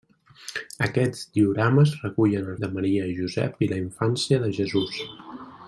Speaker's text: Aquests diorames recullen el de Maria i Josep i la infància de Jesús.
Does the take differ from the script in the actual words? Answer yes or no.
no